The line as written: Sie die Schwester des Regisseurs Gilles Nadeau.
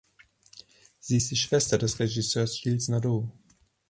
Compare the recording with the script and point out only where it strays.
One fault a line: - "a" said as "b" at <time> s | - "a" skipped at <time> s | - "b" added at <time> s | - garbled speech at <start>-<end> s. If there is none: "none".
- "ist" added at 1.1 s